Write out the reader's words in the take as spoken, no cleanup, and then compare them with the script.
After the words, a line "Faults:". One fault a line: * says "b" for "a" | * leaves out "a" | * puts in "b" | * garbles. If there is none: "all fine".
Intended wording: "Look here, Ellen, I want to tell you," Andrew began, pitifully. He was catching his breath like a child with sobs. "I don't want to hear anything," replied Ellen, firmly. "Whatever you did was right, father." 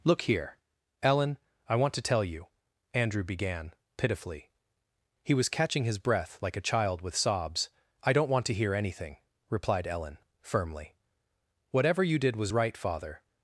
"Look here, Ellen, I want to tell you," Andrew began, pitifully. He was catching his breath like a child with sobs. "I don't want to hear anything," replied Ellen, firmly. "Whatever you did was right, father."
Faults:
all fine